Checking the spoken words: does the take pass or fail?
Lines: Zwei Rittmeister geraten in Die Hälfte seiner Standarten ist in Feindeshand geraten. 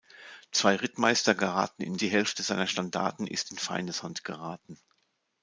pass